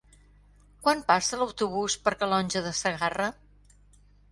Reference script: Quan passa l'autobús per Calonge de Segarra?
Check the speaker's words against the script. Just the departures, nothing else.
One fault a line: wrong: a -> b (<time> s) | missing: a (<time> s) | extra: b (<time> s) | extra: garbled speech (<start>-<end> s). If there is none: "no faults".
no faults